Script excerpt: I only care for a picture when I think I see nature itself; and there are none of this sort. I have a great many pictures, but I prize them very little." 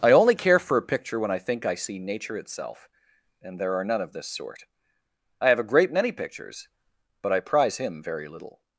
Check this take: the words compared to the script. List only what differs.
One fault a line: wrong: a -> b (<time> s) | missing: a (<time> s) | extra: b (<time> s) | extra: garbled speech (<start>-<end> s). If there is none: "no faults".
wrong: them -> him (7.8 s)